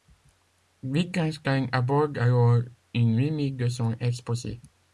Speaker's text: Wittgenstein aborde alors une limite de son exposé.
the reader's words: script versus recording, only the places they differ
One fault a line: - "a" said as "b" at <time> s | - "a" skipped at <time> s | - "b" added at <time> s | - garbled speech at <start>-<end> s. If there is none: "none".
none